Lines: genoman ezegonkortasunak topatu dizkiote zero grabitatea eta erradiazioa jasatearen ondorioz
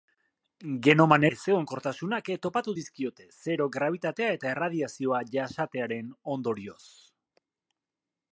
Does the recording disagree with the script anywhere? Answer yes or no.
no